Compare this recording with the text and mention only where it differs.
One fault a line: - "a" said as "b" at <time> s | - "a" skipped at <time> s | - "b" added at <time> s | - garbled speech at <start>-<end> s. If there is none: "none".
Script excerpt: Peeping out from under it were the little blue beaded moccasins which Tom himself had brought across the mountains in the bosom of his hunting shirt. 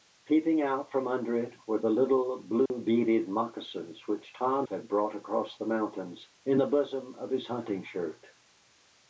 - "himself" skipped at 4.7 s